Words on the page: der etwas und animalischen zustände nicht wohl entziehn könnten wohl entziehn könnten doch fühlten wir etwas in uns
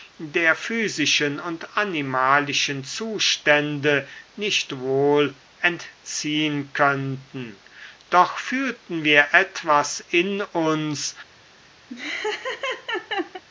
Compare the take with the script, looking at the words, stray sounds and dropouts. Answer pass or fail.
fail